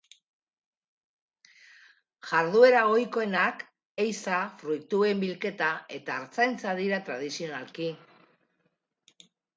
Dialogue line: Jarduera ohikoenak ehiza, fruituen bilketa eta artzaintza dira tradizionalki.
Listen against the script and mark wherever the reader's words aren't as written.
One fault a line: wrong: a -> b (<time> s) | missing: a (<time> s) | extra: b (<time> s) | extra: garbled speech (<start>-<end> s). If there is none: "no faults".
no faults